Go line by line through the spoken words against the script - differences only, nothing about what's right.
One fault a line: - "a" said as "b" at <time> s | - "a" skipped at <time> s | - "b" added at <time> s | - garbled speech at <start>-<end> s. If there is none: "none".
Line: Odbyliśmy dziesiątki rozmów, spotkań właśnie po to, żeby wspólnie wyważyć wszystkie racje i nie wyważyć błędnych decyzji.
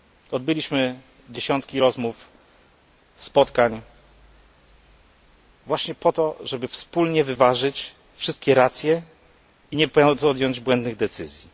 - "wyważyć" said as "podjąć" at 9.9 s